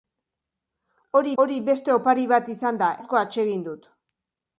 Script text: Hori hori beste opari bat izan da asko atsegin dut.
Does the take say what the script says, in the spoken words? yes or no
yes